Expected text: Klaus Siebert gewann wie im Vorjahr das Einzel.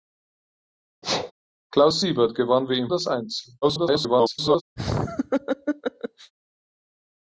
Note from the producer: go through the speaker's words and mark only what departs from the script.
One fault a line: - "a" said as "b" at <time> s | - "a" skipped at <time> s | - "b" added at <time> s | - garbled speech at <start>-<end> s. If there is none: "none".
- "Vorjahr" skipped at 2.9 s
- garbled speech at 3.6-4.6 s